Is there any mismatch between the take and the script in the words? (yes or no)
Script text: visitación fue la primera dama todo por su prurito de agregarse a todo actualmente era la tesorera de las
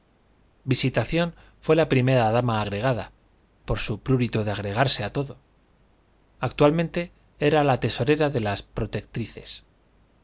yes